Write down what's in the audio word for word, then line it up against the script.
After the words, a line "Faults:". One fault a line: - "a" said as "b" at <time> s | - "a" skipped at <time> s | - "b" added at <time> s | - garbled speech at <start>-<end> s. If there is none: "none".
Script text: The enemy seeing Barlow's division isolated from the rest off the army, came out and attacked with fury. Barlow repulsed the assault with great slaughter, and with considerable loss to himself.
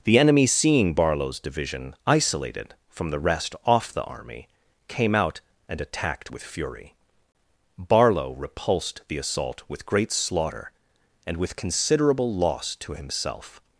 The enemy seeing Barlow's division isolated from the rest off the army, came out and attacked with fury. Barlow repulsed the assault with great slaughter, and with considerable loss to himself.
Faults:
none